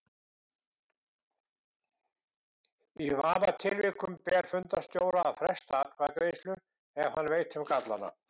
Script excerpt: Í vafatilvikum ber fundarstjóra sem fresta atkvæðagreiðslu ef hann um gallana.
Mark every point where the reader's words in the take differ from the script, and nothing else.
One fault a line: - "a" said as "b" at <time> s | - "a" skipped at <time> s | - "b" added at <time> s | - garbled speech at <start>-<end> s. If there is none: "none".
- "sem" said as "að" at 5.3 s
- "veit" added at 7.3 s